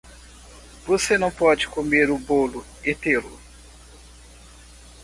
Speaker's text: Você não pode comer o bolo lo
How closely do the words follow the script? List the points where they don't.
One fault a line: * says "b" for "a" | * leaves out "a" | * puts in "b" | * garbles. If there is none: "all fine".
* puts in "e tê"